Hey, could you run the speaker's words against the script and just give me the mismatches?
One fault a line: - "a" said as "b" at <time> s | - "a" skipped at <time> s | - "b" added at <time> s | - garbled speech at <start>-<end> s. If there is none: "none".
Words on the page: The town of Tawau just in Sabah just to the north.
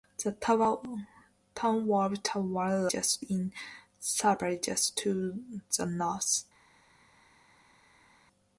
none